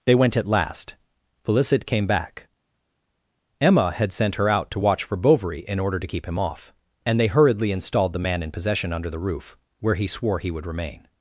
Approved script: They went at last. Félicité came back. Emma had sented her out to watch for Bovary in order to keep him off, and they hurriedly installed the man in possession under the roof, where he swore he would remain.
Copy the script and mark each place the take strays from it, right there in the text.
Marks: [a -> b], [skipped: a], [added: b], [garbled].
They went at last. Félicité came back. Emma had [sented -> sent] her out to watch for Bovary in order to keep him off, and they hurriedly installed the man in possession under the roof, where he swore he would remain.